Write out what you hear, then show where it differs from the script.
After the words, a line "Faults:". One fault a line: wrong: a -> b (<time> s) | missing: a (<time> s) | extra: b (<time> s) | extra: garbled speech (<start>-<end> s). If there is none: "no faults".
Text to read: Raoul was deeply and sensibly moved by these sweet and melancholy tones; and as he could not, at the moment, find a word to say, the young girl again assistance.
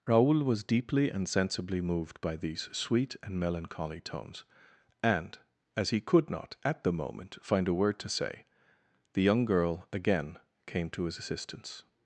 Raoul was deeply and sensibly moved by these sweet and melancholy tones; and as he could not, at the moment, find a word to say, the young girl again came to his assistance.
Faults:
extra: came to his (10.7 s)